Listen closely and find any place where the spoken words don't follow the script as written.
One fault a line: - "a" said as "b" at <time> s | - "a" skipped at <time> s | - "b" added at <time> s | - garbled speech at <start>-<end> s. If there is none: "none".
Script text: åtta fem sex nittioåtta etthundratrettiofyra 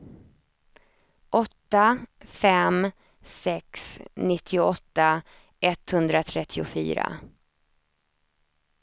none